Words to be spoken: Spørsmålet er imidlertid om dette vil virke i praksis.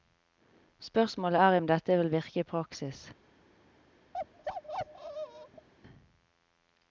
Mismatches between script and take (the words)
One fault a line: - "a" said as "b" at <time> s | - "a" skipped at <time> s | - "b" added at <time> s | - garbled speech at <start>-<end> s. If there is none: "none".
- "imidlertid" skipped at 1.6 s